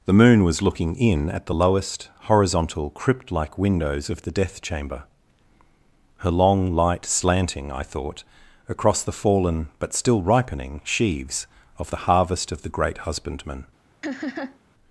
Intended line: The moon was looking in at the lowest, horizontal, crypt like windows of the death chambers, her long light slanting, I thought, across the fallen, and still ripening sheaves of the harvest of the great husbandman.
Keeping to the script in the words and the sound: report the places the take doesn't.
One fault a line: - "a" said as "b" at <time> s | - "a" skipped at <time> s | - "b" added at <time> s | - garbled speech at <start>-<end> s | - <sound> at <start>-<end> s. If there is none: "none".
- "chambers" said as "chamber" at 4.6 s
- "and" said as "but" at 9.8 s
- laugh at 14.0-14.6 s